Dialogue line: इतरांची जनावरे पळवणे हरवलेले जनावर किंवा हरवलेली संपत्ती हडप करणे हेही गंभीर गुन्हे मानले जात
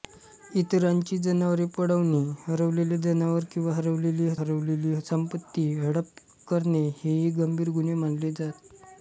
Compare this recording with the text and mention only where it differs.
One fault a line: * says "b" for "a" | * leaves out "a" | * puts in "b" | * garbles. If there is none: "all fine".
* puts in "हरवलेली"